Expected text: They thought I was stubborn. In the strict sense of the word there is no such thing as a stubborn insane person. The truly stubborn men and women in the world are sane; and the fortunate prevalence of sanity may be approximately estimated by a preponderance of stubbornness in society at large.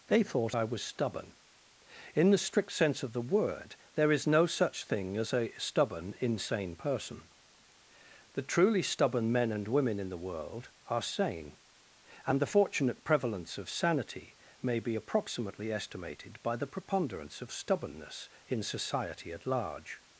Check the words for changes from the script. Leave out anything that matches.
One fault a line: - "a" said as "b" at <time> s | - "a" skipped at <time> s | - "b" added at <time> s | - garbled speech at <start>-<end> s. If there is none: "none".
- "a" said as "the" at 16.6 s